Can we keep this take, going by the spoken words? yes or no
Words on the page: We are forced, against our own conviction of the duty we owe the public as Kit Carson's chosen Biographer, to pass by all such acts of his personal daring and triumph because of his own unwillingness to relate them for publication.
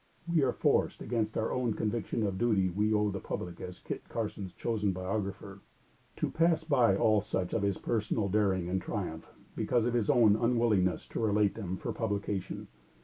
no